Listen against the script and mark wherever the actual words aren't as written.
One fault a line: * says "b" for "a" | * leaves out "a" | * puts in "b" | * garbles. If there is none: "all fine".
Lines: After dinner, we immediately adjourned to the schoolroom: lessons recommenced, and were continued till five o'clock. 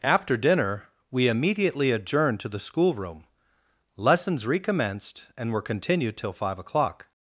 all fine